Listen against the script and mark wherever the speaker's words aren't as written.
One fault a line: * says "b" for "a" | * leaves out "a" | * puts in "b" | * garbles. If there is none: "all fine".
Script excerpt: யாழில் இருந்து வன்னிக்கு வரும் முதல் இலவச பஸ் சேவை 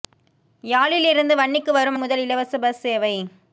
all fine